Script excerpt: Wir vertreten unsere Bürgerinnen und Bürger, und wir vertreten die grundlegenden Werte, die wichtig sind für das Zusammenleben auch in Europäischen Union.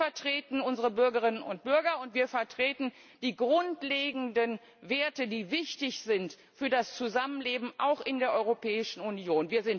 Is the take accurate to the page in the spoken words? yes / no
no